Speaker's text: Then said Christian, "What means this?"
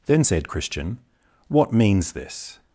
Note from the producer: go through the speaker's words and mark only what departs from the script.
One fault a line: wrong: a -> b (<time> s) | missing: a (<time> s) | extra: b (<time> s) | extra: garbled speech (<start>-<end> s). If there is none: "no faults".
no faults